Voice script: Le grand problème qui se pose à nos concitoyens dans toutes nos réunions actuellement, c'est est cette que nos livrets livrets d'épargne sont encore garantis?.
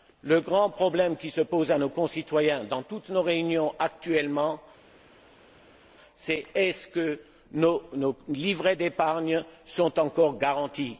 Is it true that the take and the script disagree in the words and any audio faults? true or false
true